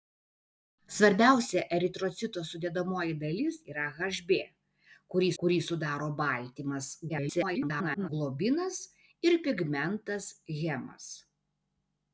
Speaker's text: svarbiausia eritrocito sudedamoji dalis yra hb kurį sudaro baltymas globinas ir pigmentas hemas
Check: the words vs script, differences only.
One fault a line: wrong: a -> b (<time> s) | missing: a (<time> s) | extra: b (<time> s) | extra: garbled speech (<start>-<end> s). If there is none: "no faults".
extra: kurį (5.4 s)
extra: garbled speech (7.1-8.1 s)